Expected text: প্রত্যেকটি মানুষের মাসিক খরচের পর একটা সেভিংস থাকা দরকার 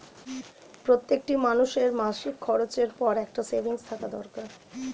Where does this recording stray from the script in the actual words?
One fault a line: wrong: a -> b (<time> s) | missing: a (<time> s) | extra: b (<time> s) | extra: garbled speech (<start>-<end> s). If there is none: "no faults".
no faults